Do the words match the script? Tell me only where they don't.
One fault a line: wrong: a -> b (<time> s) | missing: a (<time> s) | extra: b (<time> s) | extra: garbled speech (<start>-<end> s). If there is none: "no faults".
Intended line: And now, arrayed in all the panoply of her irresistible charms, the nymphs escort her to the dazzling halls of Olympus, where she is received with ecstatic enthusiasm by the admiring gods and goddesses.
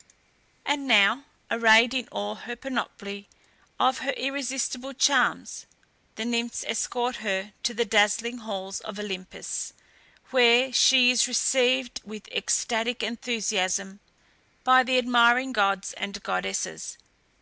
no faults